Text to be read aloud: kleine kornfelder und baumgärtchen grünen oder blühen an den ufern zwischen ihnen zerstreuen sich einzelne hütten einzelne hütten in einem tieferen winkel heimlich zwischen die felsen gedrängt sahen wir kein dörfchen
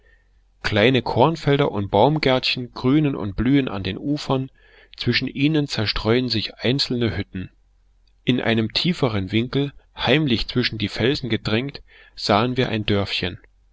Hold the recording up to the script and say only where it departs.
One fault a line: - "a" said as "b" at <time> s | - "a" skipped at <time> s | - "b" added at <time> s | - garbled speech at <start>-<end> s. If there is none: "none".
- "oder" said as "und" at 3.1 s
- "einzelne hütten" skipped at 7.5 s
- "kein" said as "ein" at 12.7 s